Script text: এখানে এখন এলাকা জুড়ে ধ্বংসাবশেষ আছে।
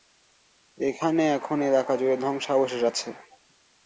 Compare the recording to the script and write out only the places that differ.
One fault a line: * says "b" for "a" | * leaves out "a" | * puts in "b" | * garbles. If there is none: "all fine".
all fine